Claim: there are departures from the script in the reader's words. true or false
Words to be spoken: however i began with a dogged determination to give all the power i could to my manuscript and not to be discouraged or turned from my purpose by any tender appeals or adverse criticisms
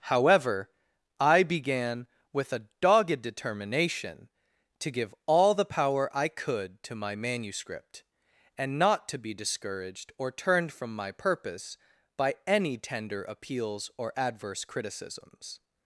false